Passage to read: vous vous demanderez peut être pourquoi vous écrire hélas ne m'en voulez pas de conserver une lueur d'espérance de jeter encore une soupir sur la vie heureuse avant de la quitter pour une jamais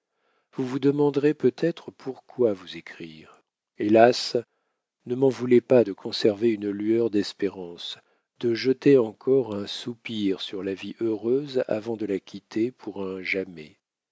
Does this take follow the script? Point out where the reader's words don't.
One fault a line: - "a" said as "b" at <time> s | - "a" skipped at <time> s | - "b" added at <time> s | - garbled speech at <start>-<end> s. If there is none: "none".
- "une" said as "un" at 9.5 s
- "une" said as "un" at 13.0 s